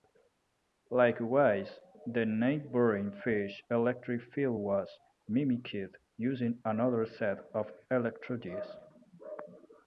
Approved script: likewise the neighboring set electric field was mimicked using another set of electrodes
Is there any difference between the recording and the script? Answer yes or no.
yes